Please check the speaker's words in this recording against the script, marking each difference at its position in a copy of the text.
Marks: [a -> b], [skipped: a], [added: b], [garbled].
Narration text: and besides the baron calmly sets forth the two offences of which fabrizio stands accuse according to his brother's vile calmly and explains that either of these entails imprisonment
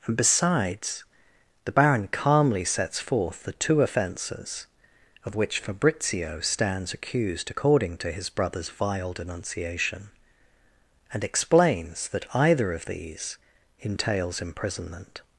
and besides the baron calmly sets forth the two offences of which fabrizio stands [accuse -> accused] according to his brother's vile [calmly -> denunciation] and explains that either of these entails imprisonment